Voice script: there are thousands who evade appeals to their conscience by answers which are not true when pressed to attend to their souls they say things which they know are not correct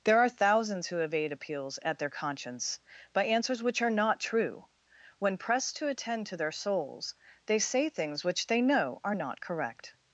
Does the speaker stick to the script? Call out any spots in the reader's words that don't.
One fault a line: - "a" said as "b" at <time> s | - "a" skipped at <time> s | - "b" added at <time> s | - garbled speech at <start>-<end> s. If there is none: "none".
- "to" said as "at" at 1.8 s